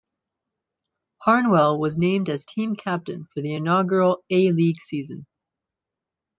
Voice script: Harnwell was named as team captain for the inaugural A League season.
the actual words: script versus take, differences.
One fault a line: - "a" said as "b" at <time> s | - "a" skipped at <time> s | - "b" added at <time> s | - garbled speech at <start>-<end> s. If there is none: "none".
none